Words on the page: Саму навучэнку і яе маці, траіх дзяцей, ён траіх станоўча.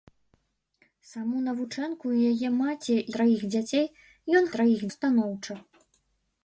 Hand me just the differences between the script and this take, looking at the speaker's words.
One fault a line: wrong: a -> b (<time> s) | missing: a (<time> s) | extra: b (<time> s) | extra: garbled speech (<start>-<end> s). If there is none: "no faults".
no faults